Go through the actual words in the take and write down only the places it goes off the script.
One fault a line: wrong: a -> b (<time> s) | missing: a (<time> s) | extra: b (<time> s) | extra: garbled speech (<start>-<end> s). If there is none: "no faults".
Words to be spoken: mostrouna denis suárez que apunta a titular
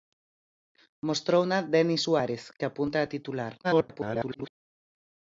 extra: garbled speech (3.6-4.5 s)